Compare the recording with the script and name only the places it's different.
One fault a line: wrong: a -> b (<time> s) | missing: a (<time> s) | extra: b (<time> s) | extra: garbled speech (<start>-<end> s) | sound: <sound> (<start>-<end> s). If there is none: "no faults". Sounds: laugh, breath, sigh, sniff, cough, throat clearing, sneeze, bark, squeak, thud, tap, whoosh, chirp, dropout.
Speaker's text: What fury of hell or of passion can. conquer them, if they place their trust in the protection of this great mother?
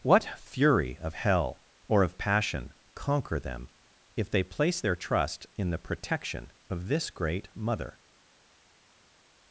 missing: can (2.7 s)